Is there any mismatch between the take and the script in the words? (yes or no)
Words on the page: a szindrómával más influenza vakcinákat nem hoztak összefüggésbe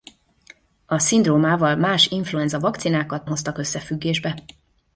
yes